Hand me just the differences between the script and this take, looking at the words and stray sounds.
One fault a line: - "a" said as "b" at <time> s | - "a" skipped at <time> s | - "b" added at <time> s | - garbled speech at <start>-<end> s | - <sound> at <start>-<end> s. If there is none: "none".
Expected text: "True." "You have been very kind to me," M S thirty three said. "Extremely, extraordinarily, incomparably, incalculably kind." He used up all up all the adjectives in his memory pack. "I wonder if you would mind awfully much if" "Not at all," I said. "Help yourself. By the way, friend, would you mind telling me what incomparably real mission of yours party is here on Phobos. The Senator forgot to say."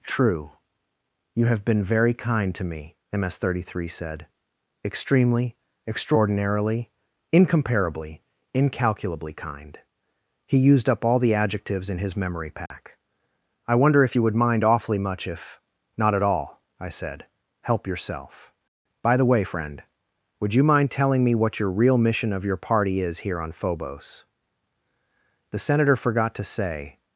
- "up all" skipped at 11.2 s
- dropout at 12.7-12.7 s
- "incomparably" said as "your" at 21.6 s
- "yours" said as "your" at 22.4 s